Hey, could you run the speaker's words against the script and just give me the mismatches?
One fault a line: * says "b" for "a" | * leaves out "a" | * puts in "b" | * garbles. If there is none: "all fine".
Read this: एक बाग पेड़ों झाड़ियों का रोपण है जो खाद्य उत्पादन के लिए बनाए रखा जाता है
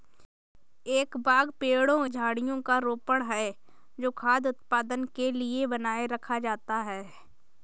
all fine